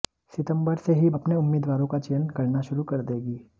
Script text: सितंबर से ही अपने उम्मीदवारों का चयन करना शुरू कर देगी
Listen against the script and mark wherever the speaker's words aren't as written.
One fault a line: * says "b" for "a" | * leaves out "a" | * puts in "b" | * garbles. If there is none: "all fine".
all fine